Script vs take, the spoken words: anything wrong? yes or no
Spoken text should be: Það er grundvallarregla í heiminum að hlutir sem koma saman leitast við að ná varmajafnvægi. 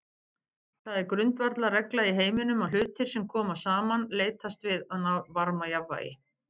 no